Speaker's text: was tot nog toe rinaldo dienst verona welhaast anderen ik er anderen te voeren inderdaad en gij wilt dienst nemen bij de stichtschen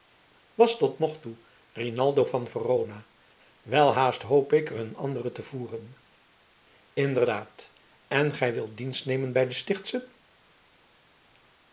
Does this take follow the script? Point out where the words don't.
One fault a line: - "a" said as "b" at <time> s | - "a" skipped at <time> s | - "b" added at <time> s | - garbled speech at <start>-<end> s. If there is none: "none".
- "dienst" said as "van" at 2.2 s
- "anderen" said as "hoop" at 4.2 s
- "een" added at 4.8 s